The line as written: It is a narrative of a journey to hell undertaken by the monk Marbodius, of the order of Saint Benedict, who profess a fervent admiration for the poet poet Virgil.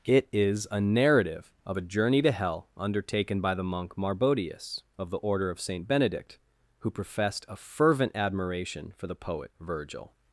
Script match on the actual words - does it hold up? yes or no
no